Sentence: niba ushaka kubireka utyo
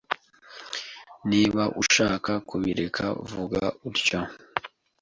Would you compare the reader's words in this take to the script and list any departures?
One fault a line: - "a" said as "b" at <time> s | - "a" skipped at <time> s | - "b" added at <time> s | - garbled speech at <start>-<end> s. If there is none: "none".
- "vuga" added at 3.3 s